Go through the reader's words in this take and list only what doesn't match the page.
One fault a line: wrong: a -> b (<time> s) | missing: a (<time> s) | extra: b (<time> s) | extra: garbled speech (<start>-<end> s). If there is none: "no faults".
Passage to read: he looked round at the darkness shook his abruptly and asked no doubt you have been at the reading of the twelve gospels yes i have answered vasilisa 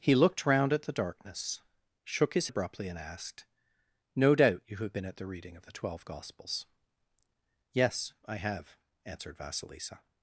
no faults